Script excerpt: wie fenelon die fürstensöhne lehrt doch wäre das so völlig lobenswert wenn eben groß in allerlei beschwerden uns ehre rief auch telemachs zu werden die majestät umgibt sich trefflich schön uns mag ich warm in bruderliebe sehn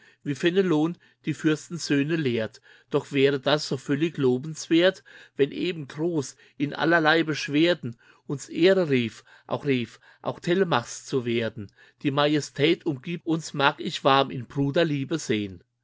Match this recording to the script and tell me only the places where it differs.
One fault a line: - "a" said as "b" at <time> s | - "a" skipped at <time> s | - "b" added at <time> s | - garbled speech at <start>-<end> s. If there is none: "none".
- "rief auch" added at 9.7 s
- "sich trefflich schön" skipped at 13.2 s